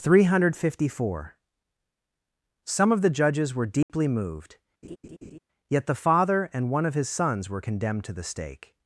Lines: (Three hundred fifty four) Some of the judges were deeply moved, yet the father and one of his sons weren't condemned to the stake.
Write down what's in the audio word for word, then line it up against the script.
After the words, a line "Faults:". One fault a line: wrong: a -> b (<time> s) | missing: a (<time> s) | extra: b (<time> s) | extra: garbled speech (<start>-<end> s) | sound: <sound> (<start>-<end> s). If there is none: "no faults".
(Three hundred fifty four) Some of the judges were deeply moved, yet the father and one of his sons were condemned to the stake.
Faults:
sound: dropout (3.8-3.9 s)
sound: laugh (4.8-5.4 s)
wrong: weren't -> were (7.5 s)